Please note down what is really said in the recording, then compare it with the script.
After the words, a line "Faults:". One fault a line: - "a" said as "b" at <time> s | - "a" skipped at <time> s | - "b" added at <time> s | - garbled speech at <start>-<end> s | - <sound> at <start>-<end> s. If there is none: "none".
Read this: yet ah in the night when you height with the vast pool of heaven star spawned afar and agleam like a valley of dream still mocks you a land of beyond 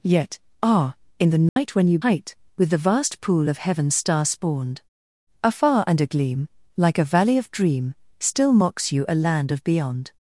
yet ah in the night when you height with the vast pool of heaven star spawned afar and agleam like a valley of dream still mocks you a land of beyond
Faults:
- dropout at 1.5-1.6 s